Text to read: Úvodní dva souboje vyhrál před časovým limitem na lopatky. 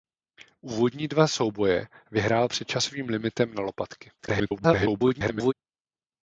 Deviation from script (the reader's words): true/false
true